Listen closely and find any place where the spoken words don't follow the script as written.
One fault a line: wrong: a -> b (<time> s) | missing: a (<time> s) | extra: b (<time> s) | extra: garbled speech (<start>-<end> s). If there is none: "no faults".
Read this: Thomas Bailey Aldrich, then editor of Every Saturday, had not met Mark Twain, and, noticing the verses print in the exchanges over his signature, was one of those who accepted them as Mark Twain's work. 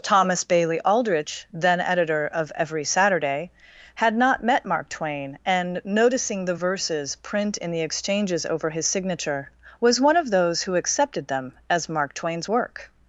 no faults